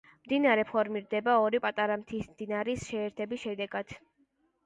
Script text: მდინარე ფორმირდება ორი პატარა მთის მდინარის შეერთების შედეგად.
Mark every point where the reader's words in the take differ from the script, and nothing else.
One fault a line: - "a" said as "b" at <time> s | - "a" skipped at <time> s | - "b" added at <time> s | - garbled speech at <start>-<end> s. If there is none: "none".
none